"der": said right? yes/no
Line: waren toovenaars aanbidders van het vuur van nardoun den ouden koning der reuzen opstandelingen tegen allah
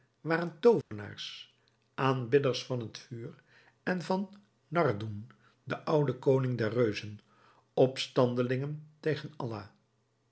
yes